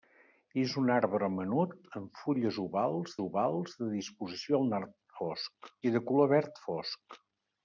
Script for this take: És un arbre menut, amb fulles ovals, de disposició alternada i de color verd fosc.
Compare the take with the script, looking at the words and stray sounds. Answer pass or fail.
fail